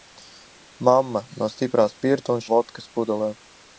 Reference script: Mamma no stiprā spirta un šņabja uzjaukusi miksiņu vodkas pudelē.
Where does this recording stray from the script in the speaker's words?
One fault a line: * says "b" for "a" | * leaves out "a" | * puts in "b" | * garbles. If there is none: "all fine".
* leaves out "šņabja uzjaukusi miksiņu"